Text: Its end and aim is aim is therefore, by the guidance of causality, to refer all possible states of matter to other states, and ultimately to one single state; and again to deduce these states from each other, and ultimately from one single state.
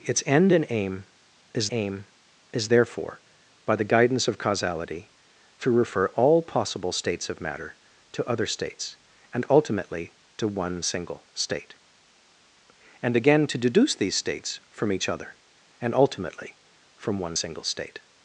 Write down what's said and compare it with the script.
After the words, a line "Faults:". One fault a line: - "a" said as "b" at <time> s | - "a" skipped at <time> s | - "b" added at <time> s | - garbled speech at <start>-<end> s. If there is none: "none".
Its end and aim is aim is therefore, by the guidance of causality, to refer all possible states of matter to other states, and ultimately to one single state; and again to deduce these states from each other, and ultimately from one single state.
Faults:
none